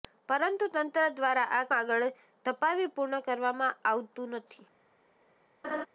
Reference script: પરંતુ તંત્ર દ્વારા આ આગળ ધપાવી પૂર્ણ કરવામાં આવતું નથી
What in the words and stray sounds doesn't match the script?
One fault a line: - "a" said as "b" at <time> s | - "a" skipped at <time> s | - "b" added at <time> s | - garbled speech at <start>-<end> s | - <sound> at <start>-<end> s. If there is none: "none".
- laugh at 5.6-5.9 s